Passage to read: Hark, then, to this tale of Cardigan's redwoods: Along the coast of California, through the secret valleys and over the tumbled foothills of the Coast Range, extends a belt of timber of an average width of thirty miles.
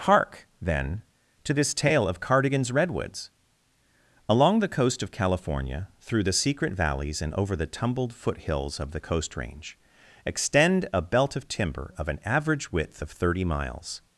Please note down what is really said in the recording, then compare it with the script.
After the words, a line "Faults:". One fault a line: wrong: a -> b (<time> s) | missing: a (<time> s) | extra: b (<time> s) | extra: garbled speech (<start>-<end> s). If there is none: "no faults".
Hark, then, to this tale of Cardigan's redwoods: Along the coast of California, through the secret valleys and over the tumbled foothills of the Coast Range, extend a belt of timber of an average width of thirty miles.
Faults:
wrong: extends -> extend (10.2 s)